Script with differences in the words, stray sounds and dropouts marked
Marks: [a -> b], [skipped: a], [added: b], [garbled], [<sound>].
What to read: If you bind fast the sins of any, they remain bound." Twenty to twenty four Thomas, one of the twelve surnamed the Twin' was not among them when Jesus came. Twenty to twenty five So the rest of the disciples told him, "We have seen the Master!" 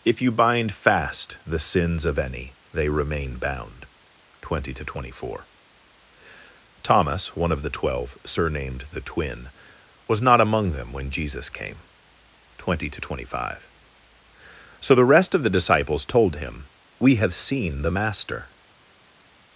If you bind fast the sins of any, they remain bound." Twenty to twenty four Thomas, one of the twelve surnamed the Twin' was not among them when Jesus came. Twenty to twenty five So the rest of the disciples told him, "We have seen the Master!"